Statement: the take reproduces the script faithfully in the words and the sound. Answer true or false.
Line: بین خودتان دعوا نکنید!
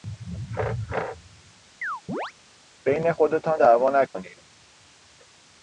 false